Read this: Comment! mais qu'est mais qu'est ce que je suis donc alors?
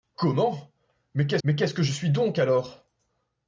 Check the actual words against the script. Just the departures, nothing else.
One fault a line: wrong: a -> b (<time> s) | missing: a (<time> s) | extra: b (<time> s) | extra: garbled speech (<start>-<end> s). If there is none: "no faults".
no faults